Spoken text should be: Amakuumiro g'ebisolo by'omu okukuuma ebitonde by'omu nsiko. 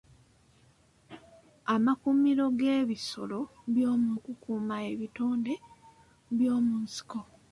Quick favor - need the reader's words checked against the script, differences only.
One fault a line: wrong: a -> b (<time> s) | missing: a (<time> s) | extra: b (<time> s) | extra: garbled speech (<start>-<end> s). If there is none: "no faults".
no faults